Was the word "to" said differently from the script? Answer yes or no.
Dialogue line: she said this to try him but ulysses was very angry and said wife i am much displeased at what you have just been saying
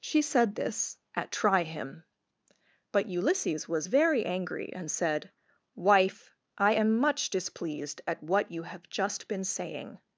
yes